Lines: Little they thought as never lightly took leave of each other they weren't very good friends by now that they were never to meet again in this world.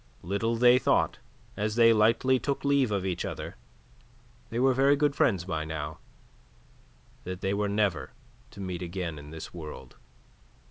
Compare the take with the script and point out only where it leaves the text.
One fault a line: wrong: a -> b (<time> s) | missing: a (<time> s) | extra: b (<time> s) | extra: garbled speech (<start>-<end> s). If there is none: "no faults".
wrong: never -> they (1.8 s)
wrong: weren't -> were (4.6 s)